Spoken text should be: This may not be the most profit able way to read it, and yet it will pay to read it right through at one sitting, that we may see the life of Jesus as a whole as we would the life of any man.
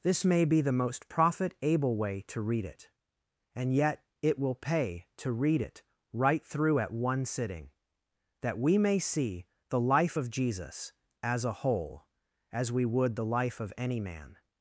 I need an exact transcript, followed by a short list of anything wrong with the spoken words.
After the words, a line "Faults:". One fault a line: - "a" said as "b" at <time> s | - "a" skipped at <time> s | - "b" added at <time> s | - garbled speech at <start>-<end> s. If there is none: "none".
This may be the most profit able way to read it, and yet it will pay to read it right through at one sitting, that we may see the life of Jesus as a whole as we would the life of any man.
Faults:
- "not" skipped at 0.5 s